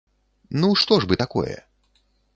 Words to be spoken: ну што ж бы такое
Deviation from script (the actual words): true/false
false